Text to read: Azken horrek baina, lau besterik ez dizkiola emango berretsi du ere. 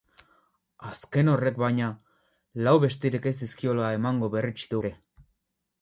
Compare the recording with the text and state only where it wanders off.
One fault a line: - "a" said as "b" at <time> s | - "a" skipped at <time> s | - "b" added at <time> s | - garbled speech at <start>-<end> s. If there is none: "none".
none